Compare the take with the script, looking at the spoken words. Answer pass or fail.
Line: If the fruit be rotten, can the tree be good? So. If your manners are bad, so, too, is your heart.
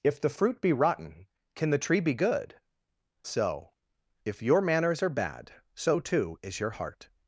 pass